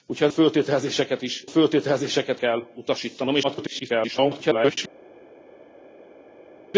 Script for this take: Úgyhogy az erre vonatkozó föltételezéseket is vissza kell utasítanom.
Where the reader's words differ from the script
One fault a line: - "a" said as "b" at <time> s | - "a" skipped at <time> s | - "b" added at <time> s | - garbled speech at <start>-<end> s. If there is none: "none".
- "erre vonatkozó" skipped at 0.3 s
- "vissza" said as "föltételezéseket" at 1.5 s
- garbled speech at 3.4-4.8 s